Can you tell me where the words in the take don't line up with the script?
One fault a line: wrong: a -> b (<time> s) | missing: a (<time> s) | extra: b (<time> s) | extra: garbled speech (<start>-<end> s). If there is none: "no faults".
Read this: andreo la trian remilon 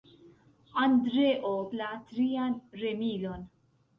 no faults